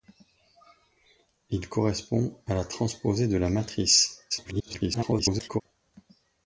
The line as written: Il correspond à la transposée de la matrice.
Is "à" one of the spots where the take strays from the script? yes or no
no